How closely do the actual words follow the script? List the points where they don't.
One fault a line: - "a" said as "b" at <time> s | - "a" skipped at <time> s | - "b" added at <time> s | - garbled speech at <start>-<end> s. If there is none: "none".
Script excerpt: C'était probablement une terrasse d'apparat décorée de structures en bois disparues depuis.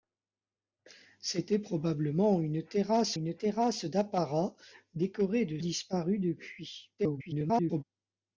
- "une terrasse" added at 3.1 s
- "structures en bois" skipped at 5.6 s
- garbled speech at 7.0-7.8 s